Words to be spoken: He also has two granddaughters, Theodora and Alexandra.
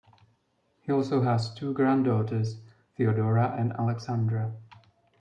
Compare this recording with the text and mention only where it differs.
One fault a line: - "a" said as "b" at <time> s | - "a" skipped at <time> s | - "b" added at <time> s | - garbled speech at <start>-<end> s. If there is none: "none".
none